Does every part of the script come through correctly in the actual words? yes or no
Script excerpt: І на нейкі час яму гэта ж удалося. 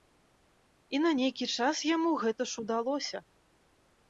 yes